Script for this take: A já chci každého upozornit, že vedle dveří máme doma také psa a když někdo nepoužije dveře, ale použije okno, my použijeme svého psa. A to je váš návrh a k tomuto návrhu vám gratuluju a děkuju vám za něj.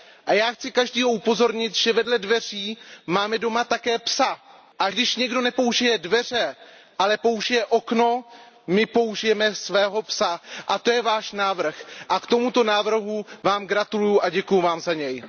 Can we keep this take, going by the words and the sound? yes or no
yes